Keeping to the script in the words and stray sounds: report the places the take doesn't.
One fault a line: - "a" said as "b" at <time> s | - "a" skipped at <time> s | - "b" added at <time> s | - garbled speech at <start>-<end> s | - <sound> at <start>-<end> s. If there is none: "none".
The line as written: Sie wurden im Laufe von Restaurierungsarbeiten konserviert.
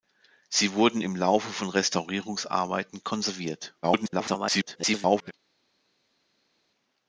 - garbled speech at 3.8-5.3 s